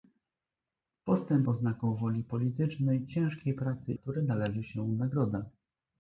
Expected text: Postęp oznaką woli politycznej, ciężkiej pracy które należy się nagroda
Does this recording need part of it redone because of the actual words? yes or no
no